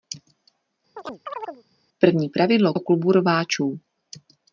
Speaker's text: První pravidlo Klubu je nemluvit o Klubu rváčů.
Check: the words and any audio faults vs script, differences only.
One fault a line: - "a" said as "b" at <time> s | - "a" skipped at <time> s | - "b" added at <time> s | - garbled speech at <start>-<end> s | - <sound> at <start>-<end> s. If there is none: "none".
- chirp at 1.0-1.6 s
- "Klubu je nemluvit" skipped at 2.7 s